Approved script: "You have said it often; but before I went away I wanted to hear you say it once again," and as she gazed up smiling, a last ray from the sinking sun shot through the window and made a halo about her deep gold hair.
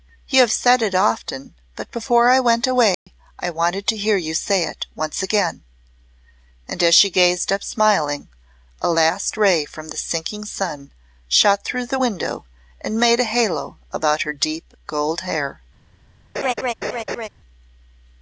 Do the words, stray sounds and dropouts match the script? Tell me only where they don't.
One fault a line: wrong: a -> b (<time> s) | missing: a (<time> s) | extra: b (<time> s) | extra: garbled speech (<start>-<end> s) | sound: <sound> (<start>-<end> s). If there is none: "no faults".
sound: dropout (2.9-3.1 s)
sound: laugh (16.3-17.3 s)